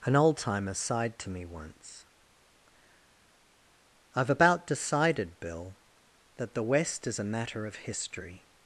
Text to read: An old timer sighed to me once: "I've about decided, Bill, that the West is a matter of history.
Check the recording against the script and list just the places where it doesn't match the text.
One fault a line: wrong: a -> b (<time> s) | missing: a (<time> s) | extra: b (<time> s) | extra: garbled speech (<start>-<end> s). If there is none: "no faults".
no faults